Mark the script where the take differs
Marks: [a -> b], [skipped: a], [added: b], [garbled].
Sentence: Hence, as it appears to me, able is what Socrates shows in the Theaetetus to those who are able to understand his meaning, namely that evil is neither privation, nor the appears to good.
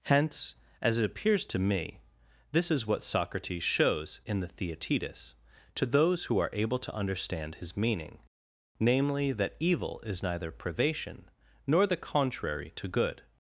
Hence, as it appears to me, [able -> this] is what Socrates shows in the Theaetetus to those who are able to understand his meaning, namely that evil is neither privation, nor the [appears -> contrary] to good.